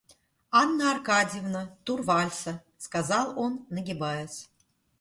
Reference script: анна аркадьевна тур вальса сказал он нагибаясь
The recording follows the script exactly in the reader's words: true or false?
true